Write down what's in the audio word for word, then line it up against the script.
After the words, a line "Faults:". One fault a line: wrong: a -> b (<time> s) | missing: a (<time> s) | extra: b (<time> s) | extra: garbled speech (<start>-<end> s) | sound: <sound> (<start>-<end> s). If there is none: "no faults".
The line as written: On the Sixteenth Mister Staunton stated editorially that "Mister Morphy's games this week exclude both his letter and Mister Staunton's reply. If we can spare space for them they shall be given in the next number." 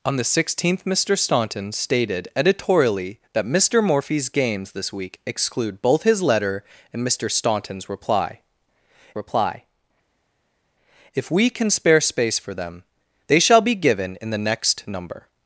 On the Sixteenth Mister Staunton stated editorially that "Mister Morphy's games this week exclude both his letter and Mister Staunton's reply reply. If we can spare space for them they shall be given in the next number."
Faults:
extra: reply (9.1 s)